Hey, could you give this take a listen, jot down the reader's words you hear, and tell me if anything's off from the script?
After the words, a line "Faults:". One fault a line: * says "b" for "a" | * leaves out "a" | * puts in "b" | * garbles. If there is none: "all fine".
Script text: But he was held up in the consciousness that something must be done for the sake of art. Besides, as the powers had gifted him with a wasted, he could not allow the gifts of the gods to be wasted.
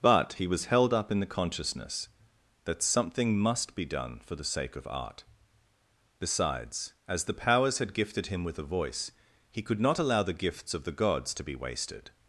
But he was held up in the consciousness that something must be done for the sake of art. Besides, as the powers had gifted him with a voice, he could not allow the gifts of the gods to be wasted.
Faults:
* says "voice" for "wasted"